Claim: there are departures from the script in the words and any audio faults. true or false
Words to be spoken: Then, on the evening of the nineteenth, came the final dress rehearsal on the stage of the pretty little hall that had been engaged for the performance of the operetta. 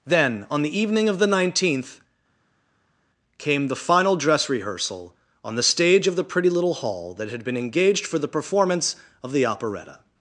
false